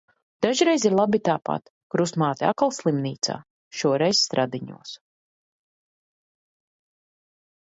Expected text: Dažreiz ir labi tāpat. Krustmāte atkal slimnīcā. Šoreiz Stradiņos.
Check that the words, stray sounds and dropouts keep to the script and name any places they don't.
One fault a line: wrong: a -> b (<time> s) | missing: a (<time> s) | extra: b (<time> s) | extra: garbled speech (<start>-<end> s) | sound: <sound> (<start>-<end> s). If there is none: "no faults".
no faults